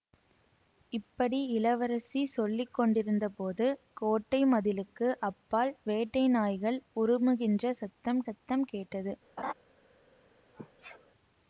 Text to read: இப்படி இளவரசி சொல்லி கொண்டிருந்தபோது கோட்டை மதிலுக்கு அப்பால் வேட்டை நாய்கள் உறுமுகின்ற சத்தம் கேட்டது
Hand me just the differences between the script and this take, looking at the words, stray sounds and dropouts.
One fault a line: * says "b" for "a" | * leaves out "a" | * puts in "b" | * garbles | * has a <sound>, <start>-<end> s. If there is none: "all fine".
* puts in "சத்தம்"
* has a laugh, 9.4-9.5 s
* has a sneeze, 10.5-11.1 s